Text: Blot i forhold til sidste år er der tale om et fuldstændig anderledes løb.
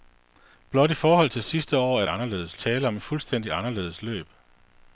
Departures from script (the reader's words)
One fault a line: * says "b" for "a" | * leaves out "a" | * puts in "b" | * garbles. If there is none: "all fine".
* says "anderledes" for "der"